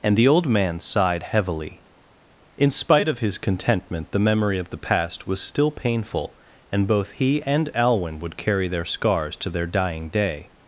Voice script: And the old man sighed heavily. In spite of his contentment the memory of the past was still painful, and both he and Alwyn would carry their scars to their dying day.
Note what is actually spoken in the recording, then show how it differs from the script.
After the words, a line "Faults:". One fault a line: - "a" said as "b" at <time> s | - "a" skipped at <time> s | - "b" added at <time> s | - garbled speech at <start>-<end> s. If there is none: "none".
And the old man sighed heavily. In spite of his contentment the memory of the past was still painful, and both he and Alwyn would carry their scars to their dying day.
Faults:
none